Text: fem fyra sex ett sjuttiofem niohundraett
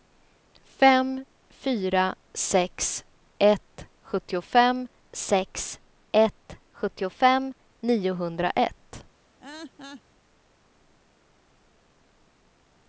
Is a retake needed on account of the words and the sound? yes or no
yes